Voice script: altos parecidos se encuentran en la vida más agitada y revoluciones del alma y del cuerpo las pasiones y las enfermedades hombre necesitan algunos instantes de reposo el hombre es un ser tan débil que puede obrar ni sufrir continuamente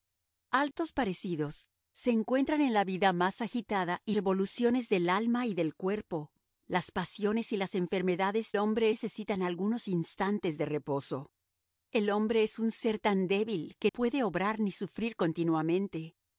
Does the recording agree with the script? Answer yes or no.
yes